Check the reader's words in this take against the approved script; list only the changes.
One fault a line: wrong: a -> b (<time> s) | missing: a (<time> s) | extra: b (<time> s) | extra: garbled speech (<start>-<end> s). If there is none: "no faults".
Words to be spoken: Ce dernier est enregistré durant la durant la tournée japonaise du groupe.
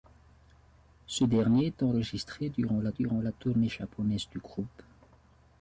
no faults